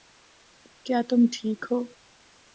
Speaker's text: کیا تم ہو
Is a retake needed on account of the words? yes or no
yes